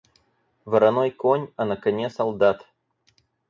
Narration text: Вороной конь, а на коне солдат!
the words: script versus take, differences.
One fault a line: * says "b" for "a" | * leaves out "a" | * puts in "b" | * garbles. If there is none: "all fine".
all fine